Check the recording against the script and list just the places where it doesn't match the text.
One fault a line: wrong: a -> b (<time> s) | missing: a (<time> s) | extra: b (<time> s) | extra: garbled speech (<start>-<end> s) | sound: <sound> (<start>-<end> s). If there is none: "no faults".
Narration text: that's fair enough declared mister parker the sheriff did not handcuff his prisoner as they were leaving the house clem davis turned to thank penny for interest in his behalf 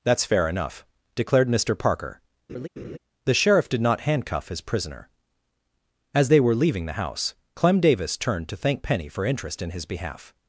sound: laugh (2.5-3.0 s)